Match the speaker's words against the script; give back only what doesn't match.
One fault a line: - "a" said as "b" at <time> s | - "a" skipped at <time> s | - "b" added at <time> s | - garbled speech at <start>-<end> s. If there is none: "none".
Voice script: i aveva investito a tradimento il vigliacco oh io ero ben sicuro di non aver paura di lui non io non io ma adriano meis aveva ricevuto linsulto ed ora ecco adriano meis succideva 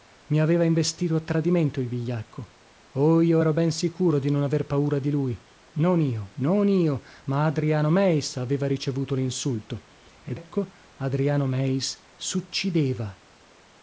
- "ora" skipped at 10.4 s